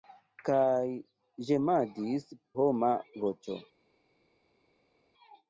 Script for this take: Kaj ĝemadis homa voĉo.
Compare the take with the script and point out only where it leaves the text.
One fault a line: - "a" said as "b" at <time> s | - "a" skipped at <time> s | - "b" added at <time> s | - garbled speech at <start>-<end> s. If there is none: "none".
none